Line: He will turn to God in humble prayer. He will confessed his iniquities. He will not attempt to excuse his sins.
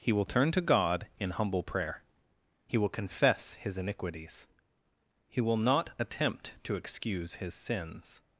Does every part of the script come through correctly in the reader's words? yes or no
no